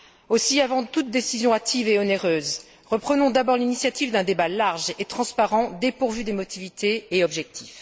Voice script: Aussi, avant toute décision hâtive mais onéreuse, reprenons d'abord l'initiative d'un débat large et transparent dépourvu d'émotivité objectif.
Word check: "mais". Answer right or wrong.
wrong